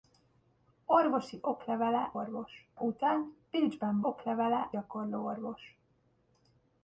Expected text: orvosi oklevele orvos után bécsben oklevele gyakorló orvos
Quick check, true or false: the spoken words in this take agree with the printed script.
true